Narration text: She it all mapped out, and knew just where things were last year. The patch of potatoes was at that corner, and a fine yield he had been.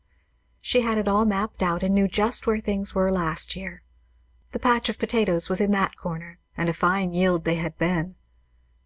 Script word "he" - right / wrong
wrong